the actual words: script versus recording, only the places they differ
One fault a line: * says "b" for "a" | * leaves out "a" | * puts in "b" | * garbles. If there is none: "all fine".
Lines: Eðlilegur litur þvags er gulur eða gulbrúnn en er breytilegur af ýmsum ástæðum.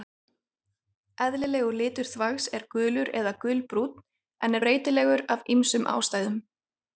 all fine